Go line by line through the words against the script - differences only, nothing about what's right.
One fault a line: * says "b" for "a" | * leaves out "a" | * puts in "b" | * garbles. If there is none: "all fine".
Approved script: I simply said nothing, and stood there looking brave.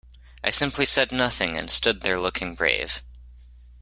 all fine